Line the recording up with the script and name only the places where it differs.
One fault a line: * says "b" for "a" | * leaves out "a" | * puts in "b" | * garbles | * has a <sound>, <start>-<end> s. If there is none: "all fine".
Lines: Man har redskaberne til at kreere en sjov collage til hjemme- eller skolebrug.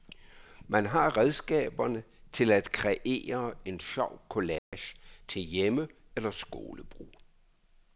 * has a dropout, 4.6-4.7 s